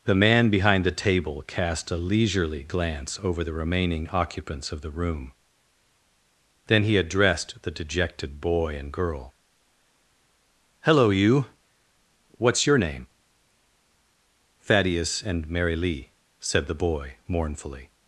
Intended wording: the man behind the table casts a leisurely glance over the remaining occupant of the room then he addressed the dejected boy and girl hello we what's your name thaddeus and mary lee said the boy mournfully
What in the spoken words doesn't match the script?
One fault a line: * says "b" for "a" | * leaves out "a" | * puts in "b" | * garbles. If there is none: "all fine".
* says "cast" for "casts"
* says "occupants" for "occupant"
* says "you" for "we"